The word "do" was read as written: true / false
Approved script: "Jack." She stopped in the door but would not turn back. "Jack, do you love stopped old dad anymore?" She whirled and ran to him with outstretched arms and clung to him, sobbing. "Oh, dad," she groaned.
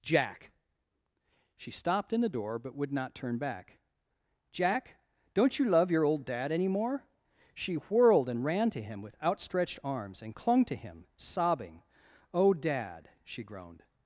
false